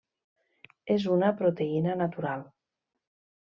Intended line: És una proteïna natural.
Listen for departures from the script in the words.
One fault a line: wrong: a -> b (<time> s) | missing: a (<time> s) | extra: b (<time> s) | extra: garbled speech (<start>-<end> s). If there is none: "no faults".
no faults